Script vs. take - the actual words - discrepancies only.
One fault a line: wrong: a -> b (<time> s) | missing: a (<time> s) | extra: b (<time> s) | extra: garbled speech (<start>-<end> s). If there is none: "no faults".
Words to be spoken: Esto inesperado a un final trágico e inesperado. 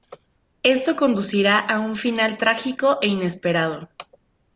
wrong: inesperado -> conducirá (0.9 s)